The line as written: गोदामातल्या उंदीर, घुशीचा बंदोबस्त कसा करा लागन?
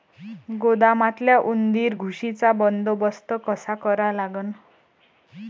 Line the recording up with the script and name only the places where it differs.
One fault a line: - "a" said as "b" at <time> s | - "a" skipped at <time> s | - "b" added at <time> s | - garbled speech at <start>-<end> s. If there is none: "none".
none